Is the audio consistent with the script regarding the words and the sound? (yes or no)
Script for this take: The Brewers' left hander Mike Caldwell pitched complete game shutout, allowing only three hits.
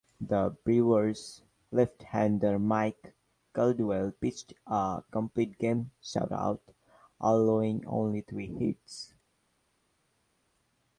no